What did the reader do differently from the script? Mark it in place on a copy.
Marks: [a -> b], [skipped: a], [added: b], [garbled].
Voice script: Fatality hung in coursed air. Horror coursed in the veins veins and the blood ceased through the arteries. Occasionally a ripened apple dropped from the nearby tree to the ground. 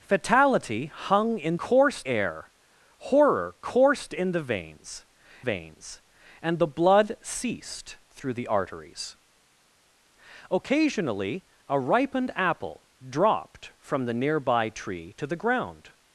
Fatality hung in coursed air. Horror coursed in the veins veins and the blood ceased through the arteries. Occasionally a ripened apple dropped from the nearby tree to the ground.